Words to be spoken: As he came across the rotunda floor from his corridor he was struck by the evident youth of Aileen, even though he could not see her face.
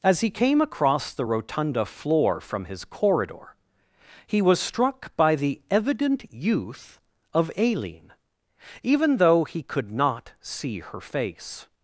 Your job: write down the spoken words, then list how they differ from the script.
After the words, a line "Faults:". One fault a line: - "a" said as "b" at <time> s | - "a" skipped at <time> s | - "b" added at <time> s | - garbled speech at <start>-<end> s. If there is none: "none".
As he came across the rotunda floor from his corridor he was struck by the evident youth of Aileen, even though he could not see her face.
Faults:
none